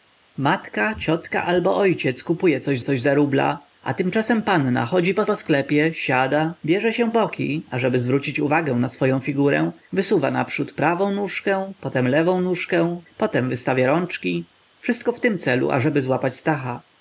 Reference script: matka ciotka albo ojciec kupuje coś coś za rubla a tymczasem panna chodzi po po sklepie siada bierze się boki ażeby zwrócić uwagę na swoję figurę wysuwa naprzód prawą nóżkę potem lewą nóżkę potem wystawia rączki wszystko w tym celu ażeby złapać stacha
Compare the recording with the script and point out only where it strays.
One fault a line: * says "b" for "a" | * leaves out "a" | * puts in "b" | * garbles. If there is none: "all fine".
all fine